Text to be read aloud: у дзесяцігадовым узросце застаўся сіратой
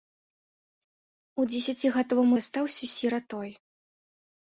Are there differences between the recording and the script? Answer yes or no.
yes